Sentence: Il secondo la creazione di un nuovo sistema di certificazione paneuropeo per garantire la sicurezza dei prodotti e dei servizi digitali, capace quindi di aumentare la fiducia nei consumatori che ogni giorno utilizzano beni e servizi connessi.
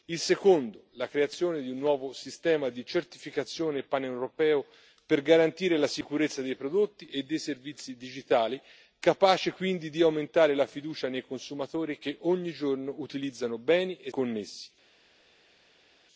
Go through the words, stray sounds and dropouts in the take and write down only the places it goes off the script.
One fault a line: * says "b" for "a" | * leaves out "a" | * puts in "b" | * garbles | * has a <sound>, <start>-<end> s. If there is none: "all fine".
* leaves out "servizi"